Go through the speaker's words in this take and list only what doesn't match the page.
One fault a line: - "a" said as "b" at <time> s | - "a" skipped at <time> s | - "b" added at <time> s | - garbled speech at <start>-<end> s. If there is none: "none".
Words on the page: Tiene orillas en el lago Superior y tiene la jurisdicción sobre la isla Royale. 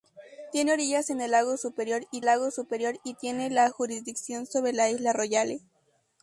- "lago Superior y" added at 2.2 s